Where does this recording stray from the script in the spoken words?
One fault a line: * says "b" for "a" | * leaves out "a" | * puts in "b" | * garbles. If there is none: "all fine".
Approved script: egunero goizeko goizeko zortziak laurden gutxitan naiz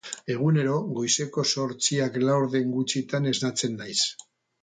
* leaves out "goizeko"
* puts in "esnatzen"